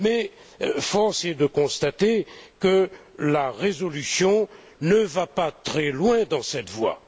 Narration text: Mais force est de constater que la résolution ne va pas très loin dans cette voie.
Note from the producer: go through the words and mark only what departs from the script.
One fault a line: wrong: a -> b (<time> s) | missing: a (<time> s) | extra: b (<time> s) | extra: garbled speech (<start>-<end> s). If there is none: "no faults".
no faults